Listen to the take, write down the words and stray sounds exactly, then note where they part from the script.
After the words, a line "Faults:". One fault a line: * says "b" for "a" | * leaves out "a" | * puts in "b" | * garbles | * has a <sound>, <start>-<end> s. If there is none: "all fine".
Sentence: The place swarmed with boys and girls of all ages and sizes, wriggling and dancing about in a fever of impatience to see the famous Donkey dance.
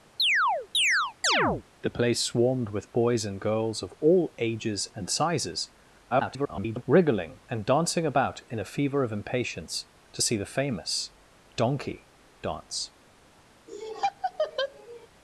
The place swarmed with boys and girls of all ages and sizes, [garbled] wriggling and dancing about in a fever of impatience to see the famous Donkey dance.
Faults:
* has a chirp, 0.2-1.6 s
* garbles
* has a laugh, 13.7-15.1 s